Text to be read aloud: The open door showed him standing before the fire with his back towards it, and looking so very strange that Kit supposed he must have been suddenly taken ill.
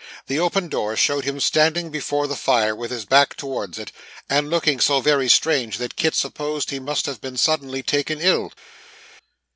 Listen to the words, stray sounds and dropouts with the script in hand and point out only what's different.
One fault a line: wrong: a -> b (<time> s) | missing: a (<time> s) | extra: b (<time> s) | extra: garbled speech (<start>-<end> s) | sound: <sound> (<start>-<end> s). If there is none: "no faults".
no faults